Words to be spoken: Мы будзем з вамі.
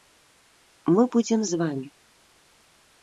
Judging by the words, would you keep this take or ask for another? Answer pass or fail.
pass